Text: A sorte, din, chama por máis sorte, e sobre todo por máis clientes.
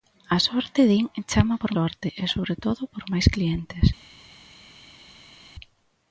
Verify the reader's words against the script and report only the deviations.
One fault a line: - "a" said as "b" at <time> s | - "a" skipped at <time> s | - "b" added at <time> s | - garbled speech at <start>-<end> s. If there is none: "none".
- "máis" skipped at 1.7 s